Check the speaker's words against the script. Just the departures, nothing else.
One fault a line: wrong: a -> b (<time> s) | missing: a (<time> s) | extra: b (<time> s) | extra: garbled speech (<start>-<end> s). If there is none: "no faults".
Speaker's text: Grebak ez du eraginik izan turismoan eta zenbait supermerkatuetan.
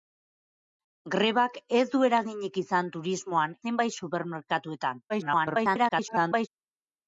missing: eta (3.5 s)
extra: garbled speech (5.1-6.5 s)